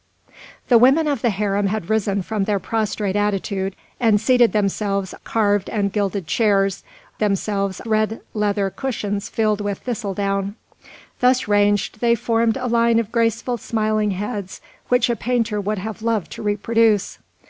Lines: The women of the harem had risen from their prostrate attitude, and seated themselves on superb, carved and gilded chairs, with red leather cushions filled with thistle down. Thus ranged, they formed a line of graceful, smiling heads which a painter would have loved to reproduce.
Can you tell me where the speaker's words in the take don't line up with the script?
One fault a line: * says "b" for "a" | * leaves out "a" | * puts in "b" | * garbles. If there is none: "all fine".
* leaves out "on superb"
* says "themselves" for "with"